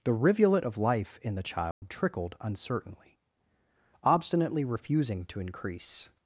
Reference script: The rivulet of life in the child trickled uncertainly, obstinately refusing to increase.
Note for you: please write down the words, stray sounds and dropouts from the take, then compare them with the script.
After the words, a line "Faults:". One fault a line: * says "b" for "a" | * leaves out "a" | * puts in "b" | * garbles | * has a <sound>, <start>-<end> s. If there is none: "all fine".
The rivulet of life in the child trickled uncertainly, obstinately refusing to increase.
Faults:
* has a dropout, 1.7-1.8 s